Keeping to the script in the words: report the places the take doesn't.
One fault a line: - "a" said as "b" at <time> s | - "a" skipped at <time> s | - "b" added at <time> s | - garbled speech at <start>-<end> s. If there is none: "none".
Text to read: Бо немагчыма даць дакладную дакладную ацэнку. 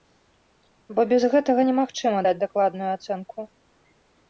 - "без гэтага" added at 1.1 s
- "дакладную" skipped at 2.9 s